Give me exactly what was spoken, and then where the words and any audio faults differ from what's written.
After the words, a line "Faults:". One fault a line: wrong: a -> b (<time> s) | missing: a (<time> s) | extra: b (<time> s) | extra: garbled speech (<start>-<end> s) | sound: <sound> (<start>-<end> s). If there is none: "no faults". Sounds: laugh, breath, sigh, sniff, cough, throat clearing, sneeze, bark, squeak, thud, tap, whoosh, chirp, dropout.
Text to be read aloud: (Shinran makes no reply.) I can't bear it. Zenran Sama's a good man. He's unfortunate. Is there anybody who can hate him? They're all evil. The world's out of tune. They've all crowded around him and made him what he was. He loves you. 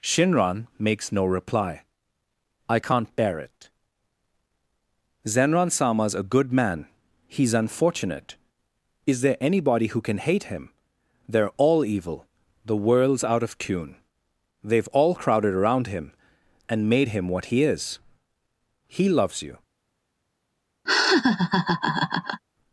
(Shinran makes no reply.) I can't bear it. Zenran Sama's a good man. He's unfortunate. Is there anybody who can hate him? They're all evil. The world's out of tune. They've all crowded around him and made him what he is. He loves you.
Faults:
wrong: was -> is (17.6 s)
sound: laugh (20.9-22.4 s)